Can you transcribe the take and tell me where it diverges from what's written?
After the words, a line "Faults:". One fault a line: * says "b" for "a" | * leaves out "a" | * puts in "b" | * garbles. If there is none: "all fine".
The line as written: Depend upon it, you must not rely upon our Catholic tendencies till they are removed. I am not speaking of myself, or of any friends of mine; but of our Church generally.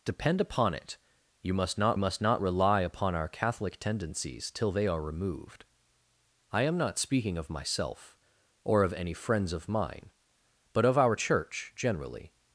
Depend upon it, you must not must not rely upon our Catholic tendencies till they are removed. I am not speaking of myself, or of any friends of mine; but of our Church generally.
Faults:
* puts in "must not"